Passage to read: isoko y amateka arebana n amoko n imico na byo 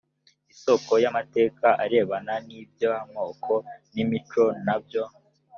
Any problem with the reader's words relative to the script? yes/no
yes